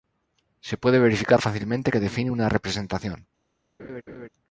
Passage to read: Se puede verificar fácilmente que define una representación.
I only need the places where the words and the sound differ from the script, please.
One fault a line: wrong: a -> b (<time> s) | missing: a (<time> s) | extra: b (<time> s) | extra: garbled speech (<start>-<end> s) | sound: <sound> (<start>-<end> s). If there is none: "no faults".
sound: laugh (3.8-4.3 s)